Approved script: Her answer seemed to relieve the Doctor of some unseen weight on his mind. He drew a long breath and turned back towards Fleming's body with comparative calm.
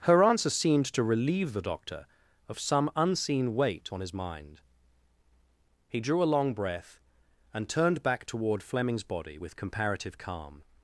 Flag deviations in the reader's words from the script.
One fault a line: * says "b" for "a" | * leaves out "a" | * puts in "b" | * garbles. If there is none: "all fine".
* says "toward" for "towards"